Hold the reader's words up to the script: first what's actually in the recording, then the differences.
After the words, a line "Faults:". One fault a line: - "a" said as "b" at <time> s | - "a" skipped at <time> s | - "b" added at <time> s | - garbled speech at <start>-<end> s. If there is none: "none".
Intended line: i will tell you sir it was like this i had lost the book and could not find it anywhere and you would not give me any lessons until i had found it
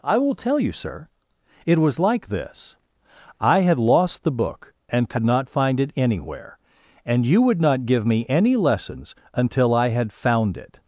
i will tell you sir it was like this i had lost the book and could not find it anywhere and you would not give me any lessons until i had found it
Faults:
none